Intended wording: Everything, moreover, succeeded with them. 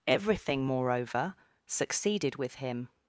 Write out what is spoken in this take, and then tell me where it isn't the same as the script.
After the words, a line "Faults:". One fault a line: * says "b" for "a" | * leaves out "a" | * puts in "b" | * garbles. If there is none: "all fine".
Everything, moreover, succeeded with him.
Faults:
* says "him" for "them"